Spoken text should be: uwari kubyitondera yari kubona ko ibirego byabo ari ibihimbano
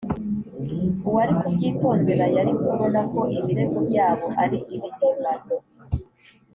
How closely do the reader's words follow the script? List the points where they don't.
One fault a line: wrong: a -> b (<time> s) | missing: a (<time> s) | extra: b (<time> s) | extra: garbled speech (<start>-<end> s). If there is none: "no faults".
no faults